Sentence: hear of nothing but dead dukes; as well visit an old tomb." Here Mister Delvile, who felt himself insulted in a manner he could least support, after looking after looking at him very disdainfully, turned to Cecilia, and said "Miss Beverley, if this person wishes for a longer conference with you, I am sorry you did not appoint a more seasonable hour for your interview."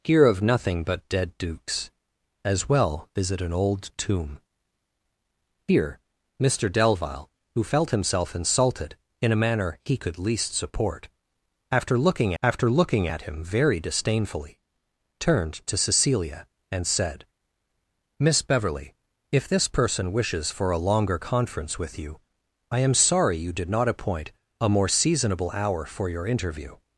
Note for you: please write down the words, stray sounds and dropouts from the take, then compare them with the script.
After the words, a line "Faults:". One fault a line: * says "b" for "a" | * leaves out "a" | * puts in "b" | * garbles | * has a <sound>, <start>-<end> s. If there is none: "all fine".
hear of nothing but dead dukes; as well visit an old tomb." Here Mister Delvile, who felt himself insulted in a manner he could least support, after looking after looking at him very disdainfully, turned to Cecilia, and said "Miss Beverley, if this person wishes for a longer conference with you, I am sorry you did not appoint a more seasonable hour for your interview."
Faults:
all fine